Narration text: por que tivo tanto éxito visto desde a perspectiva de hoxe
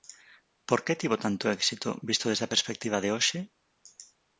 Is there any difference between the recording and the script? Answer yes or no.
no